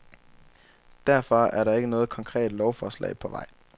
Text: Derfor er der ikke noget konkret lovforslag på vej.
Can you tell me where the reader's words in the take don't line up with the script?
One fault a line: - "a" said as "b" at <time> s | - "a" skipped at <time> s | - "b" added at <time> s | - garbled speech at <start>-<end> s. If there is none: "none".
none